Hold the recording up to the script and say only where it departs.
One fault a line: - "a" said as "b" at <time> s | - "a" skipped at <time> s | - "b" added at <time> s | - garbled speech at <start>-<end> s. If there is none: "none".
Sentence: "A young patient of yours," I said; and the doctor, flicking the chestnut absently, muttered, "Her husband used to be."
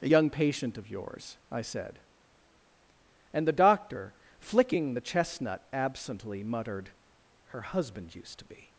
none